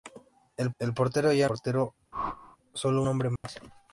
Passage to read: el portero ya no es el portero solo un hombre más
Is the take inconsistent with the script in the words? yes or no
yes